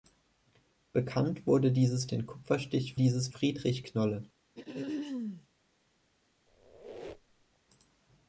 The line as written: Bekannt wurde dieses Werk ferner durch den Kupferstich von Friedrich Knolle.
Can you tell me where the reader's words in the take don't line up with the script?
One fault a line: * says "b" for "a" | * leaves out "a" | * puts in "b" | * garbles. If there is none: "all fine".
* leaves out "Werk ferner durch"
* says "dieses" for "von"